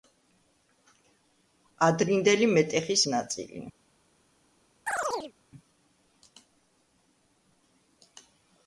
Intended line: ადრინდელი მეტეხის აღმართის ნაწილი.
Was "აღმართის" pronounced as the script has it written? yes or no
no